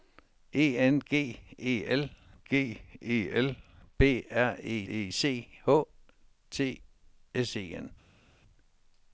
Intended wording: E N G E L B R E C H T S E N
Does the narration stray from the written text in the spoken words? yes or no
yes